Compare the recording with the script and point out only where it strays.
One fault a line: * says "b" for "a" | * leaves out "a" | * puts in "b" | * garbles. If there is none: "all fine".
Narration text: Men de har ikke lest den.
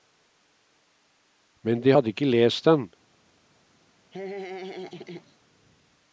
* says "hadde" for "har"